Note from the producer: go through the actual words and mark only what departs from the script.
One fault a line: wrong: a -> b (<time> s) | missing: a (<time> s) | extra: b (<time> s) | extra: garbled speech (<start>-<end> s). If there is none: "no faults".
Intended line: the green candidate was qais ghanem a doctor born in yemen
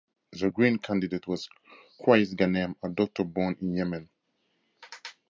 no faults